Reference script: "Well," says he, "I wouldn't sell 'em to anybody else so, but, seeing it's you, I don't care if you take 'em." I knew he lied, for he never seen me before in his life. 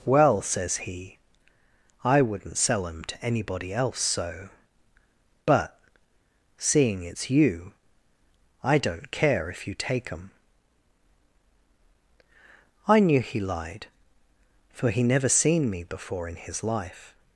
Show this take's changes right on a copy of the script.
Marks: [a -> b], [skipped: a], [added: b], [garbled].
"Well," says he, "I wouldn't sell 'em to anybody else so, but, seeing it's you, I don't care if you take 'em." I knew he lied, for he never seen me before in his life.